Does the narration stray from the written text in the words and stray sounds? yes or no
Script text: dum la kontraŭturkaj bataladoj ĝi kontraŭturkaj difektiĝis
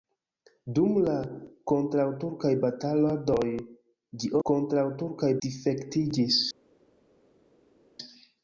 no